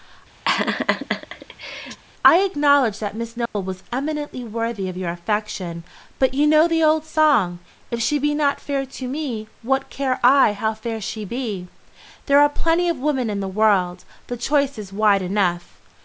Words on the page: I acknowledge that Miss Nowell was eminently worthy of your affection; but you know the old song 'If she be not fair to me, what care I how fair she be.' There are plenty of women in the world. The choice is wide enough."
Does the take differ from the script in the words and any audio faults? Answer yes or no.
yes